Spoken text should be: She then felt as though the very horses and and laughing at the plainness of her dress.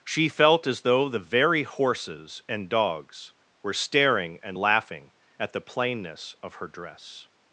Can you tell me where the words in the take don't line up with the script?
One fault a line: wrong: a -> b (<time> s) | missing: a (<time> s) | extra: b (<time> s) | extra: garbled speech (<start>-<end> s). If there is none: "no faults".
missing: then (0.3 s)
extra: dogs were staring (2.7 s)